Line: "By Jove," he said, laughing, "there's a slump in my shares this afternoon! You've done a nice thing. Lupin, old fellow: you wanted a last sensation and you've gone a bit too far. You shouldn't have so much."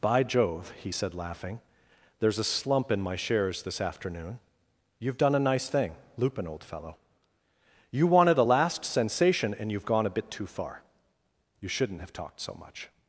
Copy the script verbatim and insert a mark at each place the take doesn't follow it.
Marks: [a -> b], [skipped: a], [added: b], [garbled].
"By Jove," he said, laughing, "there's a slump in my shares this afternoon! You've done a nice thing. Lupin, old fellow: you wanted a last sensation and you've gone a bit too far. You shouldn't have [added: talked] so much."